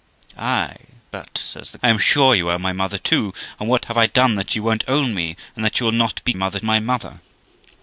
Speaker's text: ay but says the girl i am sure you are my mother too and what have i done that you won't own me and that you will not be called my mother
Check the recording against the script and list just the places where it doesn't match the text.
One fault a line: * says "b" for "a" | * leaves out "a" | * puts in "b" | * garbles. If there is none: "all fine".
* leaves out "girl"
* says "mother" for "called"